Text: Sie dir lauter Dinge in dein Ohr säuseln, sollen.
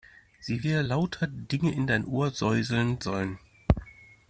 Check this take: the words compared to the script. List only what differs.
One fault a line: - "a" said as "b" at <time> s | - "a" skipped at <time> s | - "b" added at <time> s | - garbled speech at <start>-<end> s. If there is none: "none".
none